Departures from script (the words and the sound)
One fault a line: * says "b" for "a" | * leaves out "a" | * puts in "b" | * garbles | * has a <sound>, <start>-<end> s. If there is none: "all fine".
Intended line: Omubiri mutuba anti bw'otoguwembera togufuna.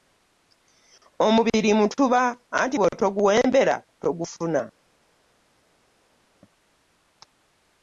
all fine